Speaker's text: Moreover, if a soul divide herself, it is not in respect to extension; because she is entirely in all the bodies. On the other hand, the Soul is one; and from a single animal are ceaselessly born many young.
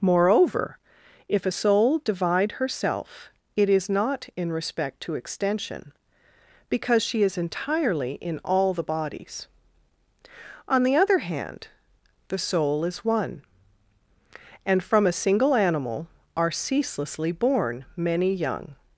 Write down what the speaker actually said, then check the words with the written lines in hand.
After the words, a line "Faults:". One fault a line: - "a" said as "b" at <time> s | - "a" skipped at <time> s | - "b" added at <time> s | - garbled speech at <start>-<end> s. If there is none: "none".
Moreover, if a soul divide herself, it is not in respect to extension; because she is entirely in all the bodies. On the other hand, the Soul is one; and from a single animal are ceaselessly born many young.
Faults:
none